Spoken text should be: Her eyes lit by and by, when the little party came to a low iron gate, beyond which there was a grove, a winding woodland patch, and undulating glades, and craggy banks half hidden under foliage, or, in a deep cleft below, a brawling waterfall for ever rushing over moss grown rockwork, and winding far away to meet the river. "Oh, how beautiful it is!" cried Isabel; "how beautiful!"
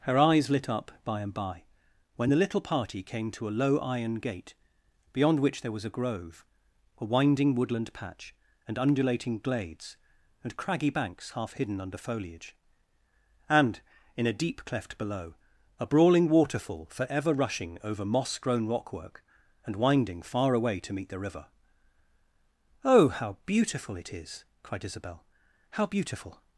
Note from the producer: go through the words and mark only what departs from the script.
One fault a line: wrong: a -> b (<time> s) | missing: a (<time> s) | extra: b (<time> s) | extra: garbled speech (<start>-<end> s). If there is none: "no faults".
extra: up (0.7 s)
wrong: or -> and (13.5 s)